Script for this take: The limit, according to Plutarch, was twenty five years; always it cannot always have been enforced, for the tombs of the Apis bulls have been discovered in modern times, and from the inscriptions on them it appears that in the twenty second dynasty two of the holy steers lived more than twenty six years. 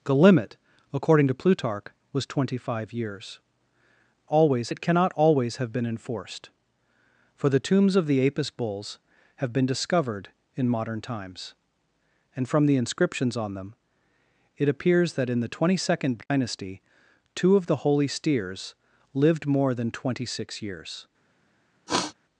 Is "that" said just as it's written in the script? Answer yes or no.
yes